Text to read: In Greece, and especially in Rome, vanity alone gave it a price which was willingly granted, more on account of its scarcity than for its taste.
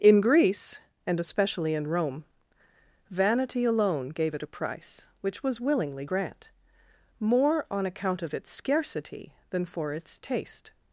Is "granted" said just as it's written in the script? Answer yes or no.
no